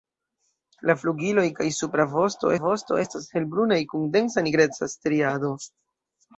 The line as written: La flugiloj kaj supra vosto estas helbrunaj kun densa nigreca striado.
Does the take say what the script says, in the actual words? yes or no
no